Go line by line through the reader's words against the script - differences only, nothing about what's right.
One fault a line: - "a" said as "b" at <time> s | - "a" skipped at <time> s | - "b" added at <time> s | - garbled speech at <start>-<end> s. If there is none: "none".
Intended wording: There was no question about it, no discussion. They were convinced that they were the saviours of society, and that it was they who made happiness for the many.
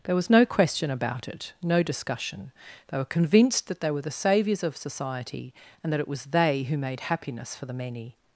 none